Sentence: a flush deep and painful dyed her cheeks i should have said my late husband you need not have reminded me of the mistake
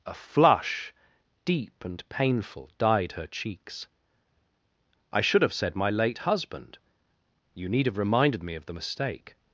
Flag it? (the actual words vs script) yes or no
yes